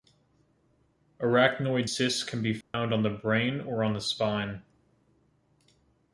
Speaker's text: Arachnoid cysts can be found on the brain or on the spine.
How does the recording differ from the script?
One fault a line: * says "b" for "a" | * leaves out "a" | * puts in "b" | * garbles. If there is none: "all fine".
all fine